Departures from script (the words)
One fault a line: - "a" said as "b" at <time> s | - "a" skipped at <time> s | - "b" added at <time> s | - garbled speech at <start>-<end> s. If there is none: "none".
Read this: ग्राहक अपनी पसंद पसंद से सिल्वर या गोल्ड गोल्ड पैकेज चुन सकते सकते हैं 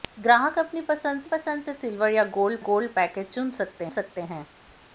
none